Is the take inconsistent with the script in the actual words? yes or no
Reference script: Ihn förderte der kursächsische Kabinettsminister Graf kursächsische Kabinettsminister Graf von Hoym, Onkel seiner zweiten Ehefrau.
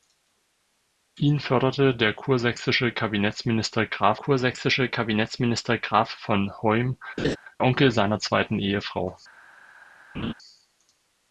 no